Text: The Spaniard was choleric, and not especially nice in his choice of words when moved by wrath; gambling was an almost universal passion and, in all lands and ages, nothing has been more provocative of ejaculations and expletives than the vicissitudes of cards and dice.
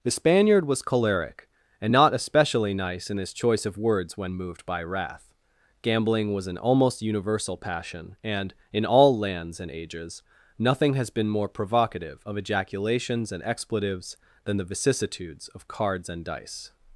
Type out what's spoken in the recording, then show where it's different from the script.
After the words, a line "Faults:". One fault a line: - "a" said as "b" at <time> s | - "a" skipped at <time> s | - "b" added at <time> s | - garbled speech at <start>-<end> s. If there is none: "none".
The Spaniard was choleric, and not especially nice in his choice of words when moved by wrath; gambling was an almost universal passion and, in all lands and ages, nothing has been more provocative of ejaculations and expletives than the vicissitudes of cards and dice.
Faults:
none